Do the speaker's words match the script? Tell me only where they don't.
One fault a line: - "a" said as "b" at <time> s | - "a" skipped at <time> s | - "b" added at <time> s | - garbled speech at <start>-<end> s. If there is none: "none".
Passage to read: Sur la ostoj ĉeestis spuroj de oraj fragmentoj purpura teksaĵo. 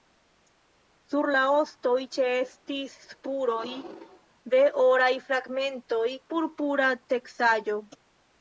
none